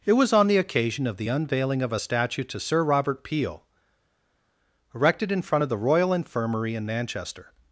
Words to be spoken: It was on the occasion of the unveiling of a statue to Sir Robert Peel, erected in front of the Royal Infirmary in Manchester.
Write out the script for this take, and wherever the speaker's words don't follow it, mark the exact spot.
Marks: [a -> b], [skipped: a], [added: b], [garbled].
It was on the occasion of the unveiling of a statue to Sir Robert Peel, erected in front of the Royal Infirmary in Manchester.